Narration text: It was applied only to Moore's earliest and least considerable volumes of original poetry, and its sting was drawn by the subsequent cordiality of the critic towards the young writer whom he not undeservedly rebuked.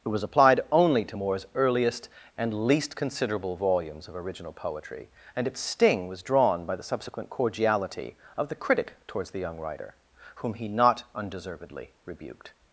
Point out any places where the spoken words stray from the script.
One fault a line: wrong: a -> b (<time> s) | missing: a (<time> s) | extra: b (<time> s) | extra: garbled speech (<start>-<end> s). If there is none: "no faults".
no faults